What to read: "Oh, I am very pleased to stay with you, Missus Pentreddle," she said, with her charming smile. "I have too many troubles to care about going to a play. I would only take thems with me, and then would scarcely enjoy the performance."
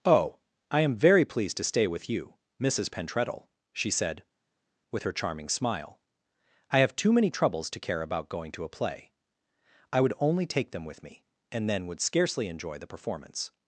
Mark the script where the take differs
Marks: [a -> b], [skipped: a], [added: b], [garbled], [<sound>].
"Oh, I am very pleased to stay with you, Missus Pentreddle," she said, with her charming smile. "I have too many troubles to care about going to a play. I would only take [thems -> them] with me, and then would scarcely enjoy the performance."